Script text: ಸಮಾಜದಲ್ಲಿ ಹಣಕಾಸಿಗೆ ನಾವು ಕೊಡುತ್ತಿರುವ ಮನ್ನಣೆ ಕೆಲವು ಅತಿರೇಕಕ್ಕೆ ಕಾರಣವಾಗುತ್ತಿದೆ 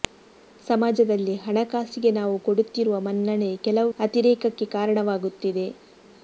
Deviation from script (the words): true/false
false